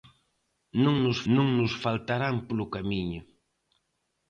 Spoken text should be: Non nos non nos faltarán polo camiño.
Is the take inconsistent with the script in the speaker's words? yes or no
no